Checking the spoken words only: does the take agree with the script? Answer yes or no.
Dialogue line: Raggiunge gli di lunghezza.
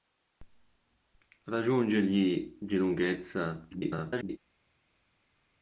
no